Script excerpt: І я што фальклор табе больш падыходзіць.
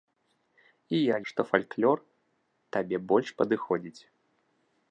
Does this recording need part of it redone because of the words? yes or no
no